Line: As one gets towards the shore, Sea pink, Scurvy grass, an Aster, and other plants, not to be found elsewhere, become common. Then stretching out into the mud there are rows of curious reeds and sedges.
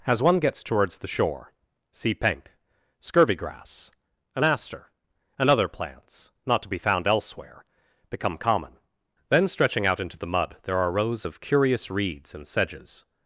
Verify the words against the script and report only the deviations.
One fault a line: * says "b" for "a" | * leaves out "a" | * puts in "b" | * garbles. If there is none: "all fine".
all fine